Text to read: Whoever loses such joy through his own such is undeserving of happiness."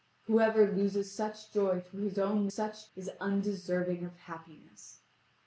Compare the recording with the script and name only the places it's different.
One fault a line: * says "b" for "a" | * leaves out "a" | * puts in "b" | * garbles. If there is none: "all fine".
all fine